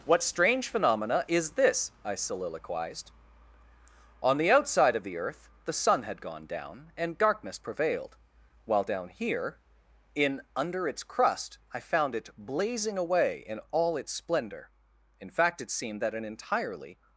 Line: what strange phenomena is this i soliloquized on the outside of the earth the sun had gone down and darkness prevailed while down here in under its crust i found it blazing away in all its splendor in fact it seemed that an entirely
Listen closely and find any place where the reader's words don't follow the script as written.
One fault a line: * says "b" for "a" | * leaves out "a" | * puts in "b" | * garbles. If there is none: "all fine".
all fine